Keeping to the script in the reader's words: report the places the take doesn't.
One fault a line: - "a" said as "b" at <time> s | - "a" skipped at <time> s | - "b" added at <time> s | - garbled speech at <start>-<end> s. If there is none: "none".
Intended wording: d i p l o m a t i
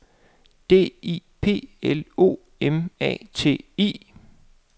none